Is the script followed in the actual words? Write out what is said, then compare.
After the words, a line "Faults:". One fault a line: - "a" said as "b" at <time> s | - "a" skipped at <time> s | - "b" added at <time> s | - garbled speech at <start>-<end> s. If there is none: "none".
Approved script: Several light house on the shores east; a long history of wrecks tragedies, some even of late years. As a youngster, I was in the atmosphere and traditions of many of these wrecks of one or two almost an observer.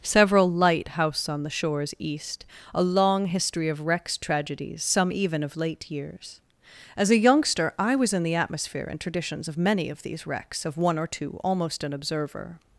Several light house on the shores east; a long history of wrecks tragedies, some even of late years. As a youngster, I was in the atmosphere and traditions of many of these wrecks of one or two almost an observer.
Faults:
none